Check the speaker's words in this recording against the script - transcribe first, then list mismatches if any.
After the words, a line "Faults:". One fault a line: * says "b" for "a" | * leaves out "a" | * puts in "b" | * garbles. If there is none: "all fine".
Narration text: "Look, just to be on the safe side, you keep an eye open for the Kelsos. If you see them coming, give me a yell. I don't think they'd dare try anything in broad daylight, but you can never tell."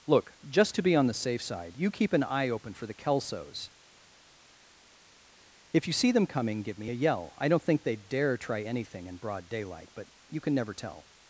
"Look, just to be on the safe side, you keep an eye open for the Kelsos. If you see them coming, give me a yell. I don't think they'd dare try anything in broad daylight, but you can never tell."
Faults:
all fine